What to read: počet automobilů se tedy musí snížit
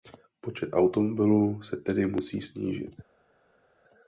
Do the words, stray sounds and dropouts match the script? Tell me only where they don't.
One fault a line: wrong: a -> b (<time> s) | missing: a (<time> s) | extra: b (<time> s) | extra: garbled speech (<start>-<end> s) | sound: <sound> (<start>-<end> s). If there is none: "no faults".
no faults